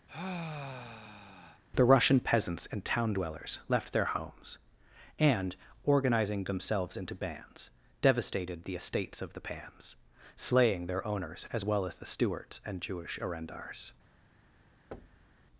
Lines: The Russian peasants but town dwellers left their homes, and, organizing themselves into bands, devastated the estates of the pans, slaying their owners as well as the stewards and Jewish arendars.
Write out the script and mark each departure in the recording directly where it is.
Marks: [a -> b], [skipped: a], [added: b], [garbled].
The Russian peasants [but -> and] town dwellers left their homes, and, organizing themselves into bands, devastated the estates of the pans, slaying their owners as well as the stewards and Jewish arendars.